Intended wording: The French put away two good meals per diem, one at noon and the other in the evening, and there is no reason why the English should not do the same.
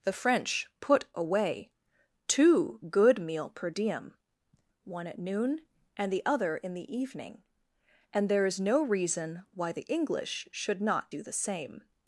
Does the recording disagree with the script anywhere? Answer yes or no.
yes